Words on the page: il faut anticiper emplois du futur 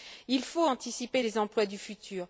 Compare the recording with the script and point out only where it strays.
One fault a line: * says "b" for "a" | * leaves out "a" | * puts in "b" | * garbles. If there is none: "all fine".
* puts in "les"